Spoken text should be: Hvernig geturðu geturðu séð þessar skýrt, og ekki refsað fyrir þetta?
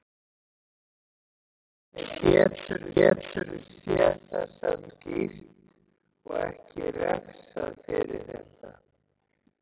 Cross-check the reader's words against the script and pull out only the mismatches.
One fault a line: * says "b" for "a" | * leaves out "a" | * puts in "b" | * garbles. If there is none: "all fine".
all fine